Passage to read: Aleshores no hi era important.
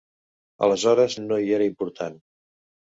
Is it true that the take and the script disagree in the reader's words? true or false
false